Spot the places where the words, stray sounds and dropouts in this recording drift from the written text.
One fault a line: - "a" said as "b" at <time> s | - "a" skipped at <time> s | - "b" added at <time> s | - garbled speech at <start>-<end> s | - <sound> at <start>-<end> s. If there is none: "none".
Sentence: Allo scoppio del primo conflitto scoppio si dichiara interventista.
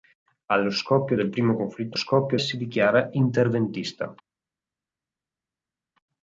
none